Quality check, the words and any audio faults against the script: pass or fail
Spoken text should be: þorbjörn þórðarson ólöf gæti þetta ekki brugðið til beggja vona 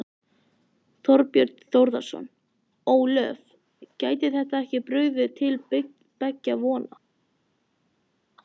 pass